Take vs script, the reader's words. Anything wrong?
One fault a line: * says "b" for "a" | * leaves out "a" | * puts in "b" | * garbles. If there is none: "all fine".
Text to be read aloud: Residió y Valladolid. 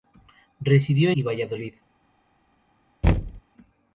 all fine